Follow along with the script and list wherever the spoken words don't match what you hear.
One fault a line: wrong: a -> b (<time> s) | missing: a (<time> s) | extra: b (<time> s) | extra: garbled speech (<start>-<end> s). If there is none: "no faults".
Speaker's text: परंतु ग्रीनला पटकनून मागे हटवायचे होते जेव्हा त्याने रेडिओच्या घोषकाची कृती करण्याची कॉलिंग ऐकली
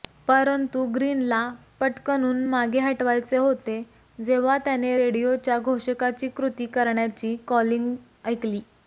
no faults